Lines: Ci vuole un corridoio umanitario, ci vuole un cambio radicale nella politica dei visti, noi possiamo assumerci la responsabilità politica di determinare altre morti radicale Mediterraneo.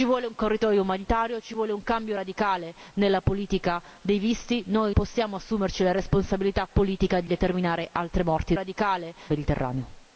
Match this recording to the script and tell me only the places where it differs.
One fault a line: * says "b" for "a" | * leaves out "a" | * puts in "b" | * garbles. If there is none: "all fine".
all fine